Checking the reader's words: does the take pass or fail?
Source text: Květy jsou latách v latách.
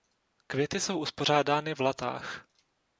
fail